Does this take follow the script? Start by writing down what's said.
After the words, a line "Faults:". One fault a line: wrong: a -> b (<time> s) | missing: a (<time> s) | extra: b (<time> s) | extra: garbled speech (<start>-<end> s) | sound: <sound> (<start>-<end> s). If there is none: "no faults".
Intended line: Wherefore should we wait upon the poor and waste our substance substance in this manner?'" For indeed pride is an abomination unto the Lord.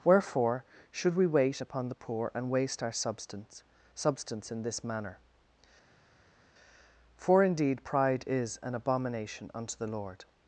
Wherefore should we wait upon the poor and waste our substance substance in this manner?'" For indeed pride is an abomination unto the Lord.
Faults:
no faults